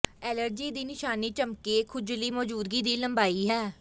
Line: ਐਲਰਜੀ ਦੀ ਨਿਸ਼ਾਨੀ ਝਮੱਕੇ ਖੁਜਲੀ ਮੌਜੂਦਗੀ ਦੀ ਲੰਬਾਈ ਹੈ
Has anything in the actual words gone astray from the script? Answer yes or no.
no